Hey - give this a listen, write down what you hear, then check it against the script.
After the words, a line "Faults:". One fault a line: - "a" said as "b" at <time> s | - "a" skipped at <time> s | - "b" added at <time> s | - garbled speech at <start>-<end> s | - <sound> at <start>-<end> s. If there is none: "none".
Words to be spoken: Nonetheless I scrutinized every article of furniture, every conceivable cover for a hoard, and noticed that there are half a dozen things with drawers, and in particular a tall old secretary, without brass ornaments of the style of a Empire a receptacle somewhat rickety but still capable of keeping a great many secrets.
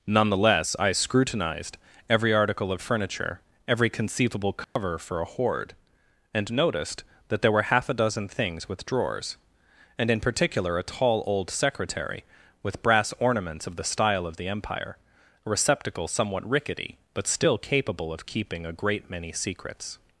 Nonetheless I scrutinized every article of furniture, every conceivable cover for a hoard, and noticed that there were half a dozen things with drawers, and in particular a tall old secretary, with brass ornaments of the style of the Empire a receptacle somewhat rickety but still capable of keeping a great many secrets.
Faults:
- dropout at 4.6-4.8 s
- "are" said as "were" at 7.5 s
- "without" said as "with" at 12.6 s
- "a" said as "the" at 14.4 s